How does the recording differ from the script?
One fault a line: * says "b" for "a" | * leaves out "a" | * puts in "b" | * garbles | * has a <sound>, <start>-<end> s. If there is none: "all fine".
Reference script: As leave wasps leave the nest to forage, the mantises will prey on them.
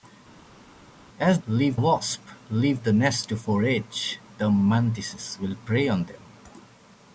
all fine